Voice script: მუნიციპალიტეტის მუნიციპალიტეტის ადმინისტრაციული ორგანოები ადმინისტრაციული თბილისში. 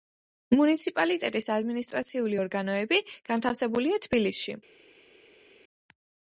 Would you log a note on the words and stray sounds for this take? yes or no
yes